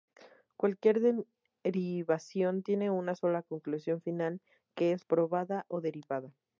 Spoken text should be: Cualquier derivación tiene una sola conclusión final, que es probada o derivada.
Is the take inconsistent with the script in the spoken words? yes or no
no